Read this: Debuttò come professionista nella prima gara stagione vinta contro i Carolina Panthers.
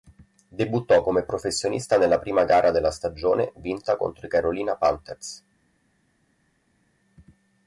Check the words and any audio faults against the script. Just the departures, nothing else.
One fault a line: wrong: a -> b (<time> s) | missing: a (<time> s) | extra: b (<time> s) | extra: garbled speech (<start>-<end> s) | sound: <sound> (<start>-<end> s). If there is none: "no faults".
extra: della (2.7 s)